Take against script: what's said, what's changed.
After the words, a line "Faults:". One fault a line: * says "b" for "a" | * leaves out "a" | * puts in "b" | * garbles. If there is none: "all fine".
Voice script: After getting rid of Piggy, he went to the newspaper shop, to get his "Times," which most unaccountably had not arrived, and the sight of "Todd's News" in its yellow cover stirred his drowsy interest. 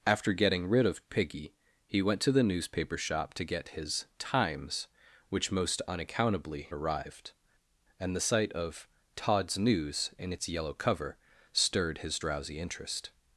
After getting rid of Piggy, he went to the newspaper shop, to get his "Times," which most unaccountably arrived, and the sight of "Todd's News" in its yellow cover stirred his drowsy interest.
Faults:
* leaves out "had not"